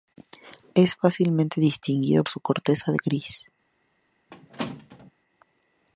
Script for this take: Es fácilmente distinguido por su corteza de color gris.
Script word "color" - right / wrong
wrong